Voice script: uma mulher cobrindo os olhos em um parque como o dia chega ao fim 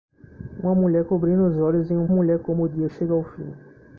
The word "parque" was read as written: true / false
false